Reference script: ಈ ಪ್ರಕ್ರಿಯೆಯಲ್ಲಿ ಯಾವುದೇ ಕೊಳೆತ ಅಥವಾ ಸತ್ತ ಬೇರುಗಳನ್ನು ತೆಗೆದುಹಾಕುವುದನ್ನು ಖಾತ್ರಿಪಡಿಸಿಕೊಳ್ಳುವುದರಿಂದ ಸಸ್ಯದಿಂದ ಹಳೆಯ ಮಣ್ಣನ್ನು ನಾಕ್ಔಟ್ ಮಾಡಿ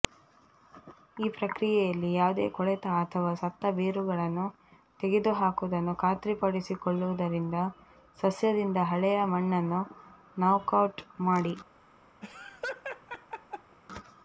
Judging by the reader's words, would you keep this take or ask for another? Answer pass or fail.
pass